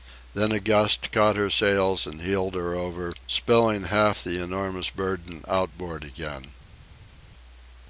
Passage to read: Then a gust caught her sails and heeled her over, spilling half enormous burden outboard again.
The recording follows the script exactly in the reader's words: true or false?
false